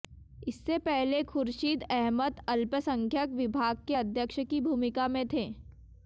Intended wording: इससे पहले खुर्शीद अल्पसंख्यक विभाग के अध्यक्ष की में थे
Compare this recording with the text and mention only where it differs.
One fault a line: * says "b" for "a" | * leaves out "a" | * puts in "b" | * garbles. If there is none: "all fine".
* puts in "अहमद"
* puts in "भूमिका"